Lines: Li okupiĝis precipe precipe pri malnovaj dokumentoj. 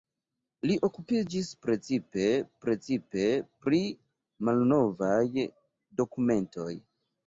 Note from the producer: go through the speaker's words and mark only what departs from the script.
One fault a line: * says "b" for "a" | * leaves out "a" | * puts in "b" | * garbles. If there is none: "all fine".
all fine